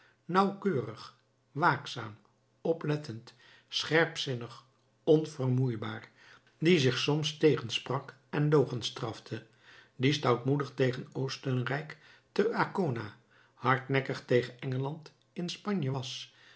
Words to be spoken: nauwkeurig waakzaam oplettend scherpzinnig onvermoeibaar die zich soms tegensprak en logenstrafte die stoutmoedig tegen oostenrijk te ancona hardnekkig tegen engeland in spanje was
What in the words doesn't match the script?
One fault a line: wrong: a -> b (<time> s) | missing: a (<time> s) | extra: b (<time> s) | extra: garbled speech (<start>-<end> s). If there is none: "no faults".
no faults